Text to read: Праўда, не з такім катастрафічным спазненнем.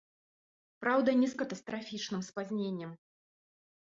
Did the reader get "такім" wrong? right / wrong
wrong